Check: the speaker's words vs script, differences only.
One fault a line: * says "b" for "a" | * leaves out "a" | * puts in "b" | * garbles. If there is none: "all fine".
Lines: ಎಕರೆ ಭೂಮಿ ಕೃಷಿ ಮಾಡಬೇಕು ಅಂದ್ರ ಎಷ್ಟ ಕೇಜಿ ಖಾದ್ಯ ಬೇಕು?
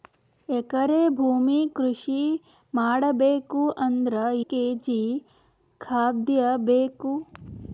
* leaves out "ಎಷ್ಟ"